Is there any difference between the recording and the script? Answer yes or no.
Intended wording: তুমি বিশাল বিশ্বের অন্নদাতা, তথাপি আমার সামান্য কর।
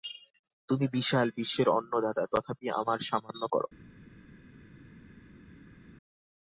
no